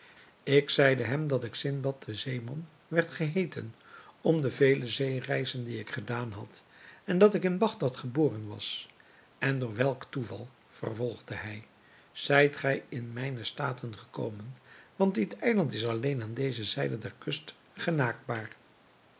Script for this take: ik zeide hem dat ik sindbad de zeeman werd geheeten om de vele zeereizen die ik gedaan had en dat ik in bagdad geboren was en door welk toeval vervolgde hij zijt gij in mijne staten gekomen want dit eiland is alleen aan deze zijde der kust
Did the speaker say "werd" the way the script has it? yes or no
yes